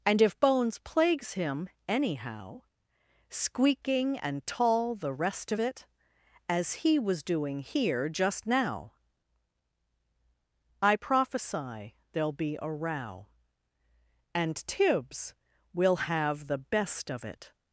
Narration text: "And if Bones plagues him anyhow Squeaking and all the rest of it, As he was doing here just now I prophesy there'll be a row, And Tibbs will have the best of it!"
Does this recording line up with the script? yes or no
no